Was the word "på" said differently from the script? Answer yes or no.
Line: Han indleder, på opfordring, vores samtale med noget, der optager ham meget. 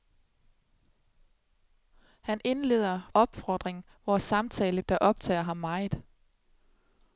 yes